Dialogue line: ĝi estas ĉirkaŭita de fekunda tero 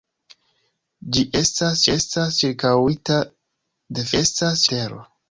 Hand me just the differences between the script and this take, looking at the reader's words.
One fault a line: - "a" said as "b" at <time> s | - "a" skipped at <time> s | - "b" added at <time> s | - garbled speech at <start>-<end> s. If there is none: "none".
- "estas" added at 2.0 s
- "fekunda" said as "estas" at 4.2 s